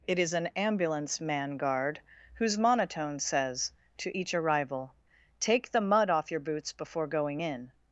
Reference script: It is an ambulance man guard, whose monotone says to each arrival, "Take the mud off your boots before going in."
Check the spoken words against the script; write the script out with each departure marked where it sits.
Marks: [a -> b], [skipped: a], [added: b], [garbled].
It is an ambulance man guard, whose monotone says to each arrival, "Take the mud off your boots before going in."